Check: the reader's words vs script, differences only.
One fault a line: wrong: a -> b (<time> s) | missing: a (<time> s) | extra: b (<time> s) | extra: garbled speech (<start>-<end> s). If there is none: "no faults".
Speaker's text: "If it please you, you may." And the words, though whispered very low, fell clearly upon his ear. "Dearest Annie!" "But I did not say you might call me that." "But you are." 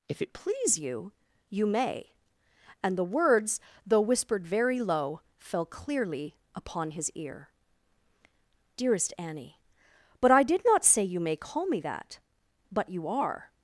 wrong: might -> may (11.2 s)